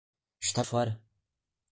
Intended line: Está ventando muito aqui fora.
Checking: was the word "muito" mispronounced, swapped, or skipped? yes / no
yes